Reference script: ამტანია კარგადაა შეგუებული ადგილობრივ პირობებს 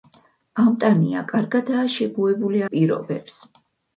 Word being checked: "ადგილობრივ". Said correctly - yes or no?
no